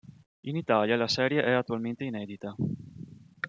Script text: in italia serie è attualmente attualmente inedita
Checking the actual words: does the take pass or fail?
fail